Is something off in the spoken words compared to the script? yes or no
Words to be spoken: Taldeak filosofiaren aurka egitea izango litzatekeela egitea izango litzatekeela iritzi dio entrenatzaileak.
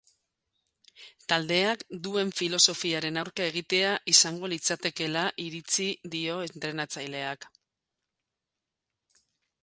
yes